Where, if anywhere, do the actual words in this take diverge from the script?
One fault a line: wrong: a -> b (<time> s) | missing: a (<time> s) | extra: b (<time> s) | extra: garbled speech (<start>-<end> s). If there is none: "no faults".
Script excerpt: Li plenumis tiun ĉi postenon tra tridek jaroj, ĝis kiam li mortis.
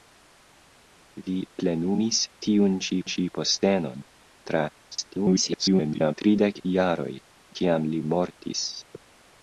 extra: ĉi (3.1 s)
extra: garbled speech (4.9-6.1 s)
missing: ĝis (7.1 s)